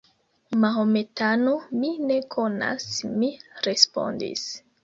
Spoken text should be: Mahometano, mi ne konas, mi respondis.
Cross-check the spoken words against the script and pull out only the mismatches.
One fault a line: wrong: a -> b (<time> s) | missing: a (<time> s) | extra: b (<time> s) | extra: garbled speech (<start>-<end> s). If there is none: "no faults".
no faults